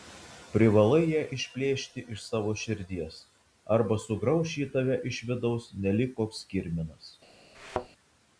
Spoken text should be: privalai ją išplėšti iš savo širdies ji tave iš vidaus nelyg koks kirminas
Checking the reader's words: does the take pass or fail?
fail